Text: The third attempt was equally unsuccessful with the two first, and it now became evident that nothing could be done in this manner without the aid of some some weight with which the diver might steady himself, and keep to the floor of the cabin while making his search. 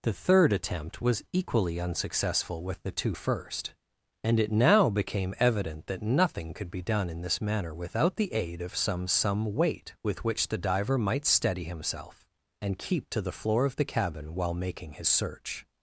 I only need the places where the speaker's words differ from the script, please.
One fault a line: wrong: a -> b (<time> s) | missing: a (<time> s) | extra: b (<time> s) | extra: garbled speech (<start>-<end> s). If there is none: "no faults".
no faults